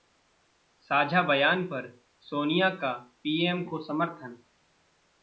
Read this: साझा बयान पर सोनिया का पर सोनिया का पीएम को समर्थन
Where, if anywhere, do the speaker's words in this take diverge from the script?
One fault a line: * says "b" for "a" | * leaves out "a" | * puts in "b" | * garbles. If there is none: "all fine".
* leaves out "पर सोनिया का"